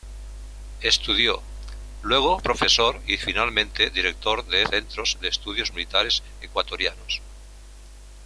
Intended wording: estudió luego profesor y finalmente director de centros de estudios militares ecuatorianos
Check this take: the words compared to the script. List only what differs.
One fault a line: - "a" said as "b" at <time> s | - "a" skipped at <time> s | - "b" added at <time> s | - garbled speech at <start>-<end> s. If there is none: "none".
none